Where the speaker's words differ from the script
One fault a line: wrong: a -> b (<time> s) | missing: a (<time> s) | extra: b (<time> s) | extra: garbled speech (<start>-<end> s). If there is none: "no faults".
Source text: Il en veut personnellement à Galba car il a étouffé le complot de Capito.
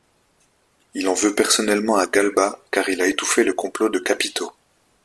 no faults